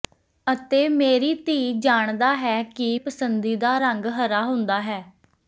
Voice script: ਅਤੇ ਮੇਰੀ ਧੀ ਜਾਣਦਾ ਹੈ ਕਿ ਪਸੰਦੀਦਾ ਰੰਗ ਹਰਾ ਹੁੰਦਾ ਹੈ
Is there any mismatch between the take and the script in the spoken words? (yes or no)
no